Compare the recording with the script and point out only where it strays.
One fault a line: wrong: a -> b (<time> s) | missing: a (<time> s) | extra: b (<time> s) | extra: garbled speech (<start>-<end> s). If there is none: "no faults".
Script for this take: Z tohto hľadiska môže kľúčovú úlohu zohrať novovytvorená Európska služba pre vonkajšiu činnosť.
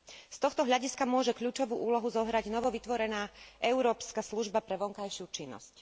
no faults